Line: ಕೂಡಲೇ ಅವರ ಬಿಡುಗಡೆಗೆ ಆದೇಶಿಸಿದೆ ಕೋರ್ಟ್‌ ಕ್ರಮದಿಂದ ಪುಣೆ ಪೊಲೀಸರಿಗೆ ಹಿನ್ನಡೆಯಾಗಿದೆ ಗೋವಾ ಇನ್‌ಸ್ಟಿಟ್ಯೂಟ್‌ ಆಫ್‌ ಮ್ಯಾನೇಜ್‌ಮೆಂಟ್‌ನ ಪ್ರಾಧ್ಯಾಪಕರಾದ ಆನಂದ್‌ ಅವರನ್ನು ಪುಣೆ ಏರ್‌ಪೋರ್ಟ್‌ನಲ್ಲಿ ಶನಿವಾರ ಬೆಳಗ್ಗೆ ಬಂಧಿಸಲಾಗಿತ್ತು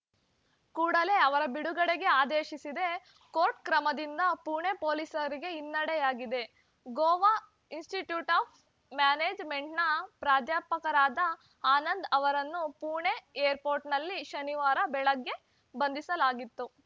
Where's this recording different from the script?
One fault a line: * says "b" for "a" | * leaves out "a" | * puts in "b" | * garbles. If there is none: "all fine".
all fine